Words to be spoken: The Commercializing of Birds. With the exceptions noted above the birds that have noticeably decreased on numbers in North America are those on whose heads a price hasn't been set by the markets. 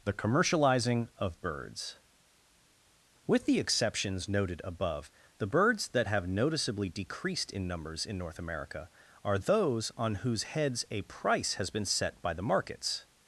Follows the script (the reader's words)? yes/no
no